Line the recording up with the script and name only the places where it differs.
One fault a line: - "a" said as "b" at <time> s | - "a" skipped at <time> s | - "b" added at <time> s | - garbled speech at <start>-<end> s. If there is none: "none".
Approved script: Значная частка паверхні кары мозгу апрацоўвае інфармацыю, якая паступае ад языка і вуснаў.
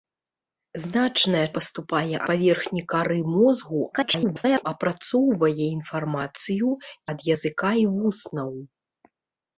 - "частка" said as "паступае" at 1.6 s
- garbled speech at 3.9-4.6 s
- "якая паступае" skipped at 6.7 s